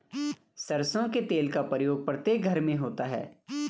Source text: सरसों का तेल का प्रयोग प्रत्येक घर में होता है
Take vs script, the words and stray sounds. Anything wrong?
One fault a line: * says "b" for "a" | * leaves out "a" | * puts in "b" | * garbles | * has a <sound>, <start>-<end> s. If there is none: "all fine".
* says "के" for "का"